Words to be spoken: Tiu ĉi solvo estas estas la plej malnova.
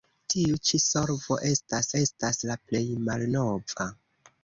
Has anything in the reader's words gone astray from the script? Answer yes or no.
no